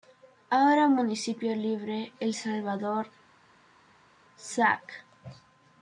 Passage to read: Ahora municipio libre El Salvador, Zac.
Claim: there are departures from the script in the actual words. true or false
false